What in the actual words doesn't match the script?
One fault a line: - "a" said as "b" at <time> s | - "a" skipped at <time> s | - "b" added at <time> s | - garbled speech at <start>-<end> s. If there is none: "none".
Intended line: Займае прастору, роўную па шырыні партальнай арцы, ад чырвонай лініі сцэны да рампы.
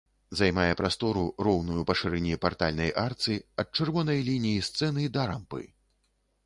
none